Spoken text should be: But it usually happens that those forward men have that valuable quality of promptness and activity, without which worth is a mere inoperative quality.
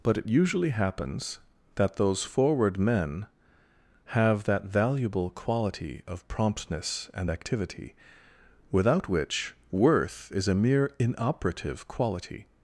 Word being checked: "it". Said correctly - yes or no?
yes